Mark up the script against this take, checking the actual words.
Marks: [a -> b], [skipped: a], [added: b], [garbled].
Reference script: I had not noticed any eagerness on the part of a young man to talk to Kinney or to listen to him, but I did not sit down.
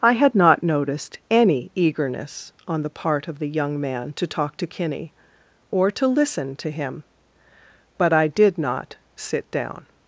I had not noticed any eagerness on the part of [a -> the] young man to talk to Kinney or to listen to him, but I did not sit down.